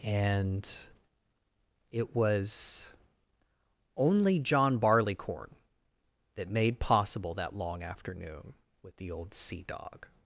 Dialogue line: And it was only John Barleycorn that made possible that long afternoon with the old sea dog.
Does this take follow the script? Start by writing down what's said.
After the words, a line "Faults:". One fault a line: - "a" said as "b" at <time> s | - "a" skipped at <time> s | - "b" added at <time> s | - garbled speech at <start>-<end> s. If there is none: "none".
And it was only John Barleycorn that made possible that long afternoon with the old sea dog.
Faults:
none